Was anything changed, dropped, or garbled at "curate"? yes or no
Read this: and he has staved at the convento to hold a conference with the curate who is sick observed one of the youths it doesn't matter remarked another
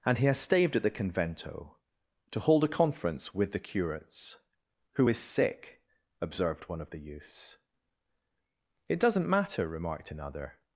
yes